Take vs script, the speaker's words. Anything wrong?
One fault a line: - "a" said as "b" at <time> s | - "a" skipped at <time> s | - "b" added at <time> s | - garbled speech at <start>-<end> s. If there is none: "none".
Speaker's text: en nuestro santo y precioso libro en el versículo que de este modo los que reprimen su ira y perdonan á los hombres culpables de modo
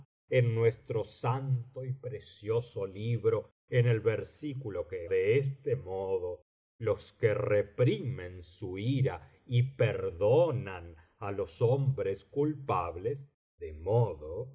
none